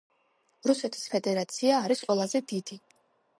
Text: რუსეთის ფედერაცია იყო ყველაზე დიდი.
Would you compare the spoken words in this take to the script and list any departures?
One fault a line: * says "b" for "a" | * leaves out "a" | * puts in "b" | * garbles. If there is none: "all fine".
* says "არის" for "იყო"